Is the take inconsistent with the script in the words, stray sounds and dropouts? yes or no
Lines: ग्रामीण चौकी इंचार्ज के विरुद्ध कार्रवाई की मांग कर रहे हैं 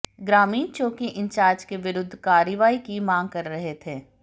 yes